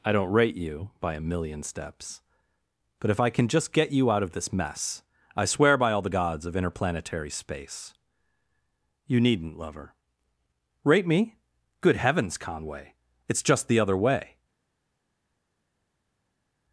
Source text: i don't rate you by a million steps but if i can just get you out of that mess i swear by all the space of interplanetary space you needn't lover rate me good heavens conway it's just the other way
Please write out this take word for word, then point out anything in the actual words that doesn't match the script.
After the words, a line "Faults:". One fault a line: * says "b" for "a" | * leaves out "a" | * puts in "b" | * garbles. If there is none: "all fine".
i don't rate you by a million steps but if i can just get you out of this mess i swear by all the gods of interplanetary space you needn't lover rate me good heavens conway it's just the other way
Faults:
* says "this" for "that"
* says "gods" for "space"